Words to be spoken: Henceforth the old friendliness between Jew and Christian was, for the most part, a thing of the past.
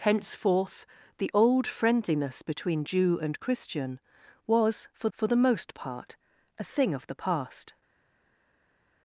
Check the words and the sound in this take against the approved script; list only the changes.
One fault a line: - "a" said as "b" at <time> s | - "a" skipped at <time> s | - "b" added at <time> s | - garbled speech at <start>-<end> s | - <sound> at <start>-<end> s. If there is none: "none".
- "for" added at 5.1 s